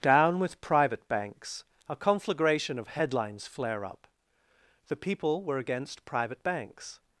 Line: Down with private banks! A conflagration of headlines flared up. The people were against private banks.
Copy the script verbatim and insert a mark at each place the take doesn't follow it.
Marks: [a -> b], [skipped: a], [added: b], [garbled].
Down with private banks! A conflagration of headlines [flared -> flare] up. The people were against private banks.